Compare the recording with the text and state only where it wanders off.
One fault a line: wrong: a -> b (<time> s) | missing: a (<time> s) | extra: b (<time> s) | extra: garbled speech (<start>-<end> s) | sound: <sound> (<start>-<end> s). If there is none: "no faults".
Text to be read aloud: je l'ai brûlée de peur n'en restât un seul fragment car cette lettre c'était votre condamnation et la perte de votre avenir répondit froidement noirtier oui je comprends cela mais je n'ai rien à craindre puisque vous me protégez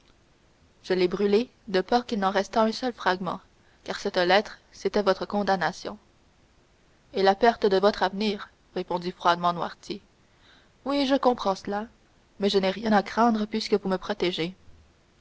extra: qu'il (2.1 s)